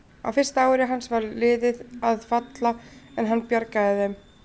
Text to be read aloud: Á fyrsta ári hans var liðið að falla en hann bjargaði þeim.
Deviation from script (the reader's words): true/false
false